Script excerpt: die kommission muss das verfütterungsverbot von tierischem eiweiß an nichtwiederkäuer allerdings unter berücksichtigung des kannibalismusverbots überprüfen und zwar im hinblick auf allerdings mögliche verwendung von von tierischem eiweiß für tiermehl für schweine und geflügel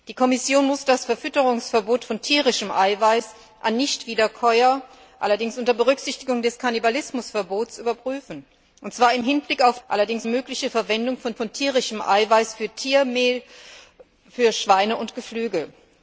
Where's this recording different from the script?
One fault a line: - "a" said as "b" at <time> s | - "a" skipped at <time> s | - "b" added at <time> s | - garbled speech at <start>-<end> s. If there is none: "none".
none